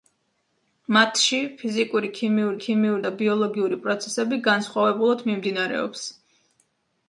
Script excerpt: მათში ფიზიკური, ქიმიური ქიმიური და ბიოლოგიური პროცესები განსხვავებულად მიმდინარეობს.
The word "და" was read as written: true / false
true